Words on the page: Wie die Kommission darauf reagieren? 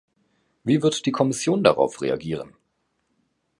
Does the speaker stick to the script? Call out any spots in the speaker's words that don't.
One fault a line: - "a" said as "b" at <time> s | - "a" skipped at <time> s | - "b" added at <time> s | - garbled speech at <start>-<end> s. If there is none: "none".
- "wird" added at 0.8 s